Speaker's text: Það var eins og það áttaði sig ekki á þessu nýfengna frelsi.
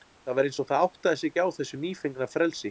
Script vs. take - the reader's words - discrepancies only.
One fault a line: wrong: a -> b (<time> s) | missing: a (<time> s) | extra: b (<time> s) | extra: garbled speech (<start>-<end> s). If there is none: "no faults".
no faults